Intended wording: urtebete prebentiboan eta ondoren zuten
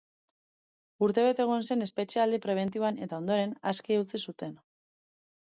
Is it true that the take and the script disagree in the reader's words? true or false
true